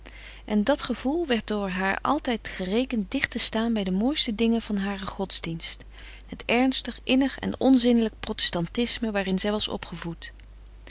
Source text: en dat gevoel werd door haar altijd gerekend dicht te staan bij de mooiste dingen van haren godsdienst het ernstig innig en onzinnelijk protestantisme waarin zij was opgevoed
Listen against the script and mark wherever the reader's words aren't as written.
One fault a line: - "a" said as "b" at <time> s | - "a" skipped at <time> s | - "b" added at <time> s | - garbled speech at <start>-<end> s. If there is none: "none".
none